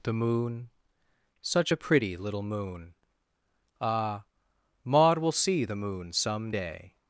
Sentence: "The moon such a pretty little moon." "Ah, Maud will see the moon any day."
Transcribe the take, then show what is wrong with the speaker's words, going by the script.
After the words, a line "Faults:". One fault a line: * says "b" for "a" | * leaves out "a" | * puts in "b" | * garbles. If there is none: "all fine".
"The moon such a pretty little moon." "Ah, Maud will see the moon some day."
Faults:
* says "some" for "any"